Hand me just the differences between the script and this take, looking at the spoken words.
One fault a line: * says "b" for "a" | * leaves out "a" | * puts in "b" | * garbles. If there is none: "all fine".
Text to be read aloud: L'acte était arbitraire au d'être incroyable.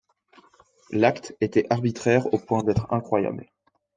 * puts in "point"